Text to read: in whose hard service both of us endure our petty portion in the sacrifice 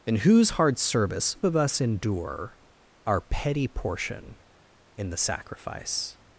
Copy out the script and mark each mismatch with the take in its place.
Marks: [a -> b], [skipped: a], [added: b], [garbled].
in whose hard service [skipped: both] of us endure our petty portion in the sacrifice